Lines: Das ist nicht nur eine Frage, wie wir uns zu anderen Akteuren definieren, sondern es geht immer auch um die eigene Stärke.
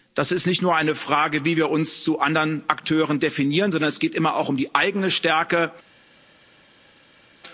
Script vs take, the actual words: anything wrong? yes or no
no